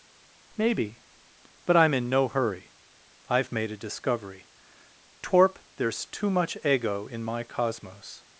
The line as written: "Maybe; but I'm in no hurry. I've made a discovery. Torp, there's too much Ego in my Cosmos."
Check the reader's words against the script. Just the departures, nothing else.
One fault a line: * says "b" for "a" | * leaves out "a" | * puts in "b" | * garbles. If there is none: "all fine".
all fine